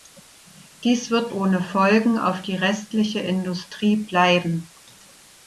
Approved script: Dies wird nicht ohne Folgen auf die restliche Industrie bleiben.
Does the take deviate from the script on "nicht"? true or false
true